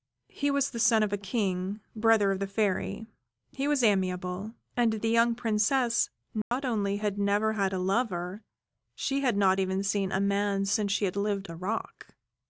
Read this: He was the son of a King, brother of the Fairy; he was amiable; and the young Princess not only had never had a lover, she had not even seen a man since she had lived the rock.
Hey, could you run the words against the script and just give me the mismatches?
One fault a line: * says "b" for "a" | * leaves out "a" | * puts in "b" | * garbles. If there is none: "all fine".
all fine